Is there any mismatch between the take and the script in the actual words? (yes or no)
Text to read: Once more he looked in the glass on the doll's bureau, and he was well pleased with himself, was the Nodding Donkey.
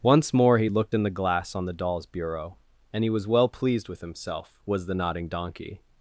no